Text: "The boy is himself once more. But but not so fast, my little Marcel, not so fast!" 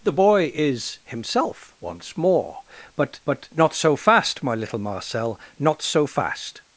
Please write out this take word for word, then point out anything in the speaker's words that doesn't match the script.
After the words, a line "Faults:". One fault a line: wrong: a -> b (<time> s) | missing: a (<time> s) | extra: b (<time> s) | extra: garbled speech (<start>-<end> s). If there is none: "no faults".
"The boy is himself once more. But but not so fast, my little Marcel, not so fast!"
Faults:
no faults